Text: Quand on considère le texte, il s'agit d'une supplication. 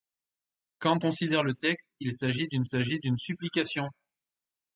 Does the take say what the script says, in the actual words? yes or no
no